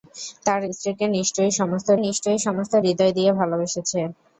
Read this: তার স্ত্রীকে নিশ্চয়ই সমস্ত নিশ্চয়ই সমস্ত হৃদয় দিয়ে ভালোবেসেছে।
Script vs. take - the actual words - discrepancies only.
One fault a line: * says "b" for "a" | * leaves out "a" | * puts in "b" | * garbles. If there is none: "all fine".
all fine